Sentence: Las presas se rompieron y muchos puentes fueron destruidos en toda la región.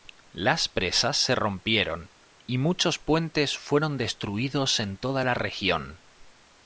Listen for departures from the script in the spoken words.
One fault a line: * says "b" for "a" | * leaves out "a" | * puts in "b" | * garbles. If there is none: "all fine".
all fine